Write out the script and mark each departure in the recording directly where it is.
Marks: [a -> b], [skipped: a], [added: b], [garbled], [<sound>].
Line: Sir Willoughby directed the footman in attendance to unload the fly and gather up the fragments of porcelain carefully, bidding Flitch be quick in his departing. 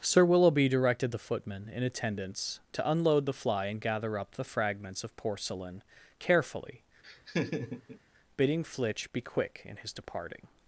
Sir Willoughby directed the footman in attendance to unload the fly and gather up the fragments of porcelain carefully, [laugh] bidding Flitch be quick in his departing.